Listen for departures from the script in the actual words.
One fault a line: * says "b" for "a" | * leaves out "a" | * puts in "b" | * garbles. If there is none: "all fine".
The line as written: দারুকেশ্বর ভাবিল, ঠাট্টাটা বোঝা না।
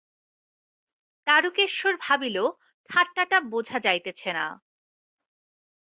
* puts in "যাইতেছে"